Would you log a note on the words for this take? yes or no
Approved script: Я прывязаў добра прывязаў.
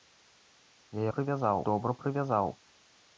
no